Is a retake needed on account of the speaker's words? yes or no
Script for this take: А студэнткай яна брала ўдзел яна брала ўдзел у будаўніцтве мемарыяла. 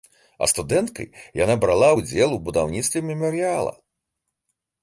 yes